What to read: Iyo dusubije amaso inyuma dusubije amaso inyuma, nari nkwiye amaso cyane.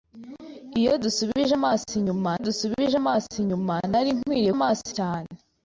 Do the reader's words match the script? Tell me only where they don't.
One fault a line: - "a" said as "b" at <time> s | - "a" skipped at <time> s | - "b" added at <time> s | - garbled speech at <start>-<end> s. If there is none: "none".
none